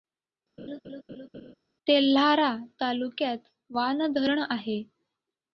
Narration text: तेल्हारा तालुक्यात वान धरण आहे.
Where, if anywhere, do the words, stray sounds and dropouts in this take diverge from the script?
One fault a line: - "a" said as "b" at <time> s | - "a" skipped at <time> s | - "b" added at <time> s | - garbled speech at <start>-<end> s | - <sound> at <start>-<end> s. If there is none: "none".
- laugh at 0.6-1.5 s